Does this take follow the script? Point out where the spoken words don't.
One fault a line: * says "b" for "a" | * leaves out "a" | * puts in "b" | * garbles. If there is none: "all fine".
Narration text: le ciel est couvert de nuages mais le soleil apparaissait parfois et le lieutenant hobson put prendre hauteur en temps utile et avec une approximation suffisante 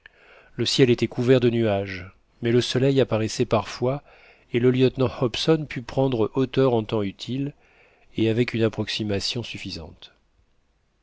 * says "était" for "est"